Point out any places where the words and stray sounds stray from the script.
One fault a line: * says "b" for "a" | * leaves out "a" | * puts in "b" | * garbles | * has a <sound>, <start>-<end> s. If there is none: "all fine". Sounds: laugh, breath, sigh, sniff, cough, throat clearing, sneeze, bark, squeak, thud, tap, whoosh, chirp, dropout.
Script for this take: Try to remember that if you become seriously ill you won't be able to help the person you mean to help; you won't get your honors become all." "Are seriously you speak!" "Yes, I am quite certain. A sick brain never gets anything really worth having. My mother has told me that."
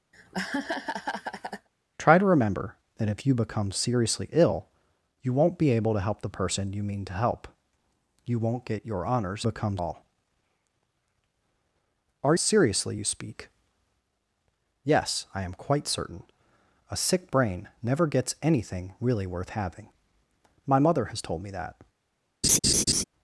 * has a laugh, 0.1-1.7 s
* has a laugh, 22.4-23.0 s